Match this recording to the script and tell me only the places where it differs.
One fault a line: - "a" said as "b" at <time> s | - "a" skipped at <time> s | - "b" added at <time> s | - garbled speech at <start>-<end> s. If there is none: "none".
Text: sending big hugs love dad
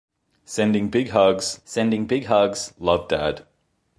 - "sending big hugs" added at 1.6 s